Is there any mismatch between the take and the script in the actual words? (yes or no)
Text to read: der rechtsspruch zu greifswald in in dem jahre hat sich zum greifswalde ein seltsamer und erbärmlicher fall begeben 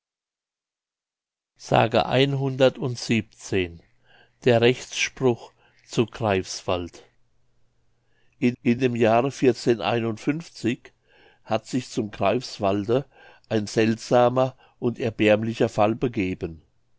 no